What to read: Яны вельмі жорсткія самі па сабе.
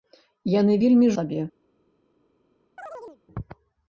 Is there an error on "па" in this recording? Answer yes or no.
yes